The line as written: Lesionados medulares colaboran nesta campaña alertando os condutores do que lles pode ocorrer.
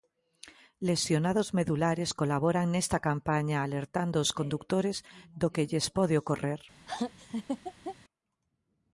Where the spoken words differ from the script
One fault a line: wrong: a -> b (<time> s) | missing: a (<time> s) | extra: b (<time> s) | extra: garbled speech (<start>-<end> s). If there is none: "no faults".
no faults